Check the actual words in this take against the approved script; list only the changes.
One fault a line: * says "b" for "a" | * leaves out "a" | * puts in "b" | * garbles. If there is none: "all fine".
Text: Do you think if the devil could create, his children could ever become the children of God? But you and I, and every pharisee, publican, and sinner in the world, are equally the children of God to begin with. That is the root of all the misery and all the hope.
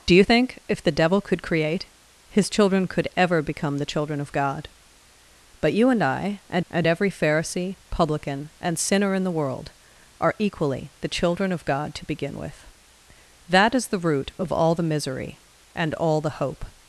* puts in "and"